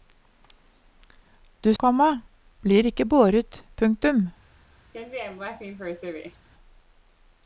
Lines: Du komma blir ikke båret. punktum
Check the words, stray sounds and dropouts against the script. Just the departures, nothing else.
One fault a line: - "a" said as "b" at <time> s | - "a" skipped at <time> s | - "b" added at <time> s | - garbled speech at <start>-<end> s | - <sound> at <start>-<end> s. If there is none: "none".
- laugh at 4.9-6.5 s